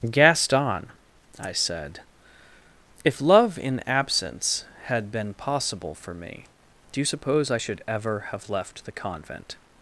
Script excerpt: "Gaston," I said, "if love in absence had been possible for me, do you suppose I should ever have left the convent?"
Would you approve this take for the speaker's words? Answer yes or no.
yes